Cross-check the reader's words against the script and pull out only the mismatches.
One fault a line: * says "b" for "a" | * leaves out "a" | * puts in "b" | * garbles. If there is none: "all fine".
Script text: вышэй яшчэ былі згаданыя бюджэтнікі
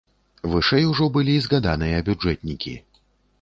* says "ужо" for "яшчэ"